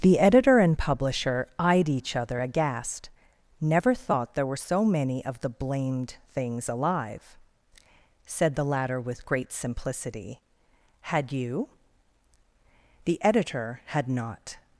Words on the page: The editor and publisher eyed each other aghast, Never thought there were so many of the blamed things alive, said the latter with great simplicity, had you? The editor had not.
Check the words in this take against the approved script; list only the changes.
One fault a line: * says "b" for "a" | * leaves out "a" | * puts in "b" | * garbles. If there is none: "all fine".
all fine